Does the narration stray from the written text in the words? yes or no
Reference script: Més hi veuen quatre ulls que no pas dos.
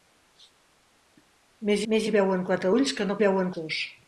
yes